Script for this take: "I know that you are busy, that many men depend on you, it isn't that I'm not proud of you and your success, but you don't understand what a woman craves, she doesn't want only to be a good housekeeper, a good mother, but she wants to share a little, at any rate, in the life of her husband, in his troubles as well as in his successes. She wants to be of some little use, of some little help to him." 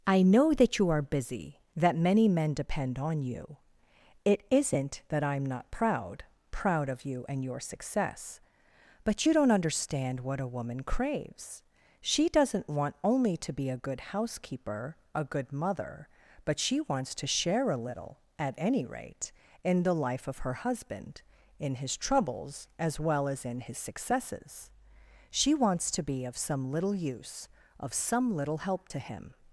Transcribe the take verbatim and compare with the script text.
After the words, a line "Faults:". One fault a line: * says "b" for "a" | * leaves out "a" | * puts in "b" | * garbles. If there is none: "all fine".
"I know that you are busy, that many men depend on you, it isn't that I'm not proud proud of you and your success, but you don't understand what a woman craves, she doesn't want only to be a good housekeeper, a good mother, but she wants to share a little, at any rate, in the life of her husband, in his troubles as well as in his successes. She wants to be of some little use, of some little help to him."
Faults:
* puts in "proud"